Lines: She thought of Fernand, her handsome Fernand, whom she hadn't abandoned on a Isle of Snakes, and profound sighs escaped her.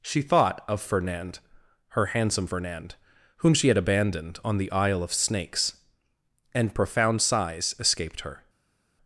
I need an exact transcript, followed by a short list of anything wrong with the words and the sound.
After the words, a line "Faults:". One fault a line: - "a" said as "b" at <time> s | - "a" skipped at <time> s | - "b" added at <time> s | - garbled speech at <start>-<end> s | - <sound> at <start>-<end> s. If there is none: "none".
She thought of Fernand, her handsome Fernand, whom she had abandoned on the Isle of Snakes, and profound sighs escaped her.
Faults:
- "hadn't" said as "had" at 3.7 s
- "a" said as "the" at 4.6 s